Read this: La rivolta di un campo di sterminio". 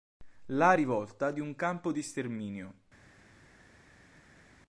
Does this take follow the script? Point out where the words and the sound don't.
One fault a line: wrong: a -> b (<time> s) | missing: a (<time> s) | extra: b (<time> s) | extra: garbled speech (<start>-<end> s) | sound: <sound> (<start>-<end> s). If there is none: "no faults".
no faults